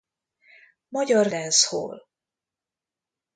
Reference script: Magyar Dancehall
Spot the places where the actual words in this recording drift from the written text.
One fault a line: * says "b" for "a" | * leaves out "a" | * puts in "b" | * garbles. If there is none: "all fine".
all fine